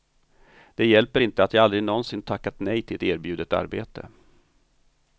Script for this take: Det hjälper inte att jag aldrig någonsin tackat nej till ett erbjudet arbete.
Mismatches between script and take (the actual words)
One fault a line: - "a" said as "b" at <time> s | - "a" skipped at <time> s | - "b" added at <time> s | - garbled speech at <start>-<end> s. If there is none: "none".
none